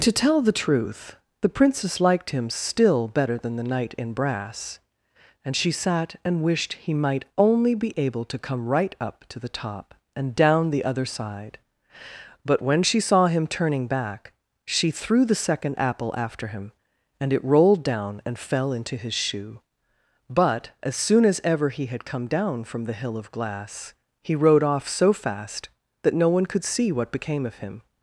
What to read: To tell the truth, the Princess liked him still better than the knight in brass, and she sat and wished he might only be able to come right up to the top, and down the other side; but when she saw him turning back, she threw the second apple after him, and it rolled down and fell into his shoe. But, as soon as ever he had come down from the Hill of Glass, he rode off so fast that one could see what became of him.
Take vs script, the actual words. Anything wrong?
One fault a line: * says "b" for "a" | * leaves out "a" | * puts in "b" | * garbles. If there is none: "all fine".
* puts in "no"